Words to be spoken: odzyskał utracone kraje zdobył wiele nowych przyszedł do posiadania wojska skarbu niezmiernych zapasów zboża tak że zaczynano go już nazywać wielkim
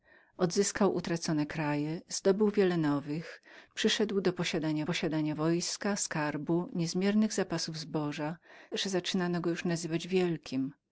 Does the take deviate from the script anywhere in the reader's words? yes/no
yes